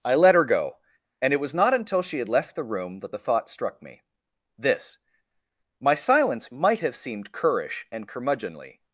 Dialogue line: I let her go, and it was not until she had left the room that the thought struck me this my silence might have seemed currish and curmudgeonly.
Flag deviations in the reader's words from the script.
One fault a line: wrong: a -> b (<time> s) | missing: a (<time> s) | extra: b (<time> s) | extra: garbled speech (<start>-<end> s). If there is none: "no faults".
no faults